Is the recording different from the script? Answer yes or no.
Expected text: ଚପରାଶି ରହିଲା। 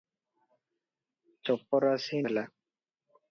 no